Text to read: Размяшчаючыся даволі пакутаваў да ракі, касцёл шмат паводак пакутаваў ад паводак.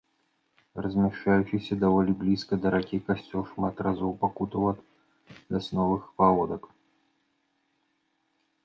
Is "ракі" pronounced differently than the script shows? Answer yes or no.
no